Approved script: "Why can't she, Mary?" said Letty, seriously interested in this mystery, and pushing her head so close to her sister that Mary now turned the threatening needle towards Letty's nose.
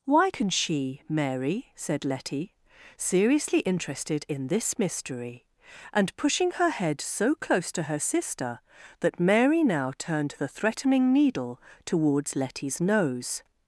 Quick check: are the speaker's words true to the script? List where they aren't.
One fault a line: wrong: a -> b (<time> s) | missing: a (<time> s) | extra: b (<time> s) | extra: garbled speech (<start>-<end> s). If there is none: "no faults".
wrong: can't -> can (0.3 s)